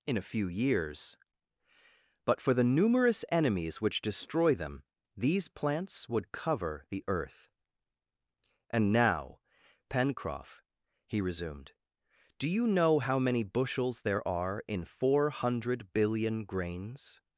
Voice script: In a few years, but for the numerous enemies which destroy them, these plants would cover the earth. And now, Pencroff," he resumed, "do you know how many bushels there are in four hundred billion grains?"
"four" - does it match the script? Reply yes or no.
yes